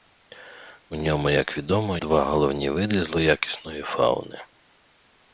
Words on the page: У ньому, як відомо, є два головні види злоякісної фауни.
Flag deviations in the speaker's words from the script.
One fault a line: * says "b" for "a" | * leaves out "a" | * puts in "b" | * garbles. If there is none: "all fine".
* leaves out "є"